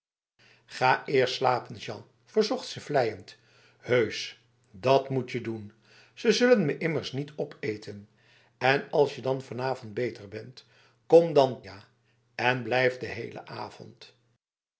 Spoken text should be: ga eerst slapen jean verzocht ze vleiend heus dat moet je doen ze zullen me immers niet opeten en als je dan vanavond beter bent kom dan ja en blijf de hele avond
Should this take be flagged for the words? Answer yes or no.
no